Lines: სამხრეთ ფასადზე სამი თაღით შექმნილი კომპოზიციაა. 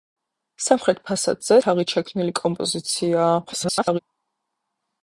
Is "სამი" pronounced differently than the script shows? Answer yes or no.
yes